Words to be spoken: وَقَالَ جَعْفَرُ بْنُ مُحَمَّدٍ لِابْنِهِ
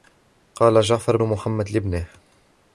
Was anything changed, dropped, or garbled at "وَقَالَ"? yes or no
no